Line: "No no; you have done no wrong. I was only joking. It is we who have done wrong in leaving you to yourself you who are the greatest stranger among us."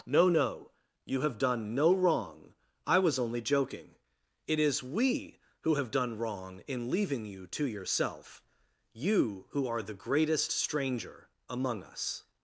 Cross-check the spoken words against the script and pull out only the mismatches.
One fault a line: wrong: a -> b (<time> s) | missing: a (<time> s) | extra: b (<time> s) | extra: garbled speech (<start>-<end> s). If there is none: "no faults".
no faults